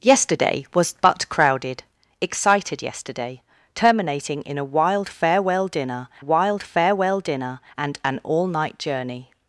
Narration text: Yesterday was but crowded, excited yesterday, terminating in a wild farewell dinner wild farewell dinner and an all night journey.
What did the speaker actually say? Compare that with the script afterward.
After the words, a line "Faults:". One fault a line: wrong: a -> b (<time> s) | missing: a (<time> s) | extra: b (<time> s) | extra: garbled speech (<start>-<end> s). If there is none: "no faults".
Yesterday was but crowded, excited yesterday, terminating in a wild farewell dinner wild farewell dinner and an all night journey.
Faults:
no faults